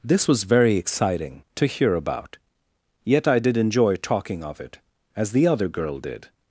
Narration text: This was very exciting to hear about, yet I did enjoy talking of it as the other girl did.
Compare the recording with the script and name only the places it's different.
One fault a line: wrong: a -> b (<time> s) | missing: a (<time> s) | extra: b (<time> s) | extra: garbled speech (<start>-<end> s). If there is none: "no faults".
no faults